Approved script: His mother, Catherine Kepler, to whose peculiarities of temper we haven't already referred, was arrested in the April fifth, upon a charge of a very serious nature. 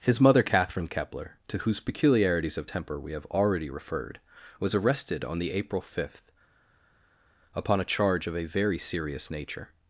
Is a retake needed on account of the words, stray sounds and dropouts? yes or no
yes